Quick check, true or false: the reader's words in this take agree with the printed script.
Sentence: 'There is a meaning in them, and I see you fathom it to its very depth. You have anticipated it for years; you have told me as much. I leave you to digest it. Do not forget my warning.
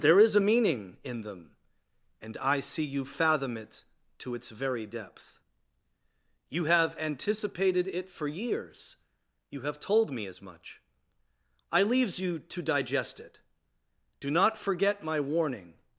false